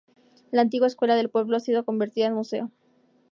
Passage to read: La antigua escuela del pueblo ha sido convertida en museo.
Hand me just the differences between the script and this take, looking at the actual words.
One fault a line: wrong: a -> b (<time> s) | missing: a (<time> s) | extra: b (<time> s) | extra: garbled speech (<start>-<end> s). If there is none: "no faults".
no faults